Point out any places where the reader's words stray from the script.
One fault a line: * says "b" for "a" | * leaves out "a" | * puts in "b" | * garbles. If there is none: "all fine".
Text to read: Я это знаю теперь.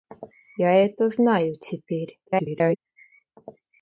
* garbles